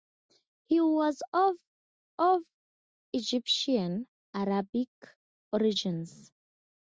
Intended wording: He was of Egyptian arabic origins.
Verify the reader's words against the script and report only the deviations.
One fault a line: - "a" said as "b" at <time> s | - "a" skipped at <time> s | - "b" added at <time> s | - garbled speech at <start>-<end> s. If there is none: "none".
- "of" added at 2.2 s